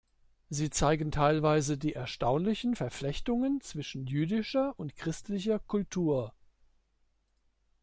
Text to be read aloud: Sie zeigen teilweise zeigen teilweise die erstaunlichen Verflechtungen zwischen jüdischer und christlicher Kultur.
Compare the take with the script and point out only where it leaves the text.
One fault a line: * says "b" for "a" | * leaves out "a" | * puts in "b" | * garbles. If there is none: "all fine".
* leaves out "zeigen teilweise"